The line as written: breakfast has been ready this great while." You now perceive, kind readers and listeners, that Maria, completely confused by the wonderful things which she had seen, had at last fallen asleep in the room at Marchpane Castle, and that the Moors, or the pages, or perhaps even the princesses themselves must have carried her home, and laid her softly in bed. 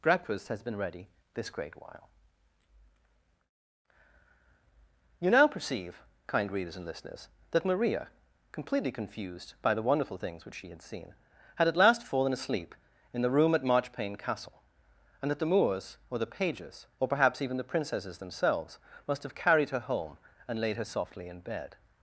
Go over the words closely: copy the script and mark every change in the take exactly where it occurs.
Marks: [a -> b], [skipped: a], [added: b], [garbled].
breakfast has been ready this great while." You now perceive, kind readers and listeners, that Maria, completely confused by the wonderful things which she had seen, had at last fallen asleep in the room at Marchpane Castle, and that the Moors, or the pages, or perhaps even the princesses themselves must have carried her home, and laid her softly in bed.